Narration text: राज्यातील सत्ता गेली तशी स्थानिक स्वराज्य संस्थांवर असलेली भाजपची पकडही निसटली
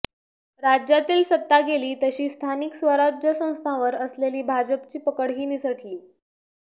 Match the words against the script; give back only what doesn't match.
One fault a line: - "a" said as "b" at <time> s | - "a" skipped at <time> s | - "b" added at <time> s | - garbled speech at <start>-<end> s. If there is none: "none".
none